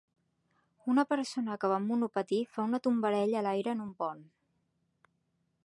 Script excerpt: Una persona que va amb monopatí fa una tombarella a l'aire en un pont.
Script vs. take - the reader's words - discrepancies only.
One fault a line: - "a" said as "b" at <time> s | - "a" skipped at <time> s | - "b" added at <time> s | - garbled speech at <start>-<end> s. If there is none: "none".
none